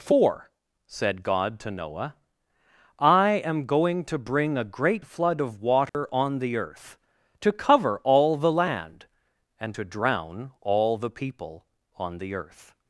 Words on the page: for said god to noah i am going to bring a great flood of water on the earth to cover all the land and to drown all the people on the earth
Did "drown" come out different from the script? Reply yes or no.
no